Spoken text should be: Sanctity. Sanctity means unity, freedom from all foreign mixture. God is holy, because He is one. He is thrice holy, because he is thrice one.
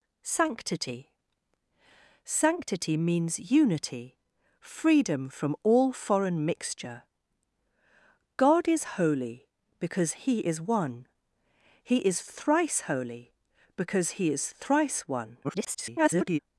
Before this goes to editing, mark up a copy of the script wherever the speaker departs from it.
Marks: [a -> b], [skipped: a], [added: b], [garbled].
Sanctity. Sanctity means unity, freedom from all foreign mixture. God is holy, because He is one. He is thrice holy, because he is thrice one. [garbled]